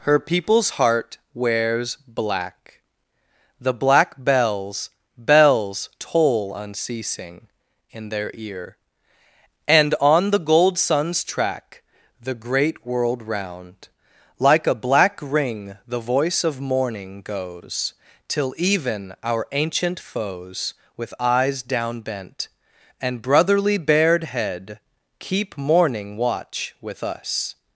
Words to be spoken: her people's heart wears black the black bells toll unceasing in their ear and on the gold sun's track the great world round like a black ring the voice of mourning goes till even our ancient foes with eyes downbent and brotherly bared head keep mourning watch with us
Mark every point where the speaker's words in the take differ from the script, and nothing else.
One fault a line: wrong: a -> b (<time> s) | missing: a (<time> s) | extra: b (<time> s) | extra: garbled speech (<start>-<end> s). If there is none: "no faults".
extra: bells (5.2 s)